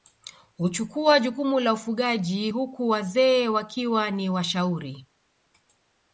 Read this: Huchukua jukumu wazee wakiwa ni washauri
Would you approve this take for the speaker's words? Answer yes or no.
no